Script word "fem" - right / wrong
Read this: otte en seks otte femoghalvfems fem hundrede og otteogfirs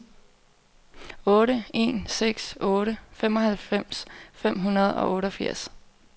right